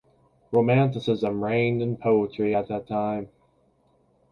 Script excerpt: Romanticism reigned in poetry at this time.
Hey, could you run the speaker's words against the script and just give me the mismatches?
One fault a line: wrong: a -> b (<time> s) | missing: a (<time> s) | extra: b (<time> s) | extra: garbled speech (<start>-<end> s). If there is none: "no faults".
wrong: this -> that (2.7 s)